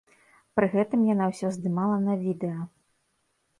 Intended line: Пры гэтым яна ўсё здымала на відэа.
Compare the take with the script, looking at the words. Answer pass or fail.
pass